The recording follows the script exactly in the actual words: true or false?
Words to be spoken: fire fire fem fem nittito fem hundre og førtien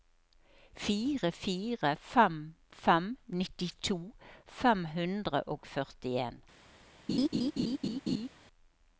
true